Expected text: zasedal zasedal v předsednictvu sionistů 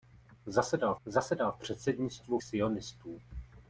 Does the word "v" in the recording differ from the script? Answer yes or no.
no